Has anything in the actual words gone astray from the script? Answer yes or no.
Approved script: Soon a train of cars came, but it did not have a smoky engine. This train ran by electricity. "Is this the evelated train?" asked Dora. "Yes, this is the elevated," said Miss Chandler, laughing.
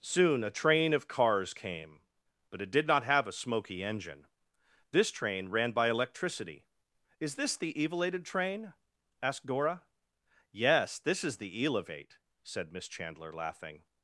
yes